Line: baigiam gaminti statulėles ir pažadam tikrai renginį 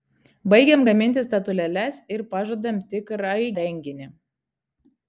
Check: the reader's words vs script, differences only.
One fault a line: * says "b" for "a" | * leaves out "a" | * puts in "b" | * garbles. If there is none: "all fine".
all fine